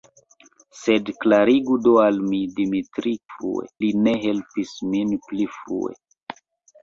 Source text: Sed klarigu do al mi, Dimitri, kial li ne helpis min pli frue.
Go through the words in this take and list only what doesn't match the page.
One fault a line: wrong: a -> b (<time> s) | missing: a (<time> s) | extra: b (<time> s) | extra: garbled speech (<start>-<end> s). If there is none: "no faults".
wrong: kial -> frue (3.3 s)